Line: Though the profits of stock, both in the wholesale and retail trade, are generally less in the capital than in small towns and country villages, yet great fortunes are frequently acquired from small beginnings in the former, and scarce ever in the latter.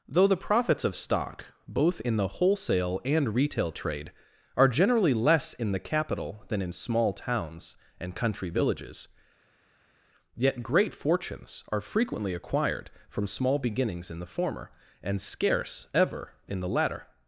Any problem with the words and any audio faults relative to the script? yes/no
no